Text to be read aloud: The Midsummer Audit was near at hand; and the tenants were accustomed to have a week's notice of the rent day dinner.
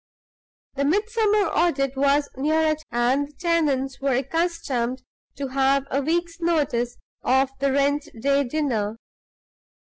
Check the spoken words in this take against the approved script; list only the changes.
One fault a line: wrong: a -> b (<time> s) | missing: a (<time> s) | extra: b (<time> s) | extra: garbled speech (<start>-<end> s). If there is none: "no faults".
missing: hand (2.8 s)